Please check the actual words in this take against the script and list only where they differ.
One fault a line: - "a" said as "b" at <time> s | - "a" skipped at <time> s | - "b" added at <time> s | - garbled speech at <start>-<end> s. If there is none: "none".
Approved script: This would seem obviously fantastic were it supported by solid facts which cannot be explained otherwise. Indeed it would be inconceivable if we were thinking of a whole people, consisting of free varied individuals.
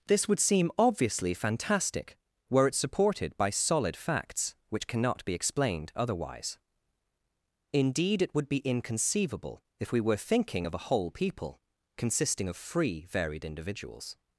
none